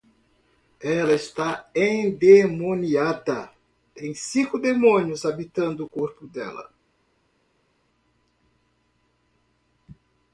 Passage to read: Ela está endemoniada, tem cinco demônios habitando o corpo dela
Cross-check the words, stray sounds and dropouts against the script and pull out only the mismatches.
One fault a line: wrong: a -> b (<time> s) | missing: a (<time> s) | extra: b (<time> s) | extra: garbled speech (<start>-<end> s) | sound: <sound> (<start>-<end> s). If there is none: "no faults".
no faults